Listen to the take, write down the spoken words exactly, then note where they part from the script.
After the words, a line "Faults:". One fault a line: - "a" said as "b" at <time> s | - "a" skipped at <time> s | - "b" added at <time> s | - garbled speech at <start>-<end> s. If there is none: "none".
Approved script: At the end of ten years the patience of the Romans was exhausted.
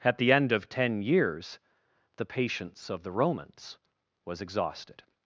At the end of ten years the patience of the Romans was exhausted.
Faults:
none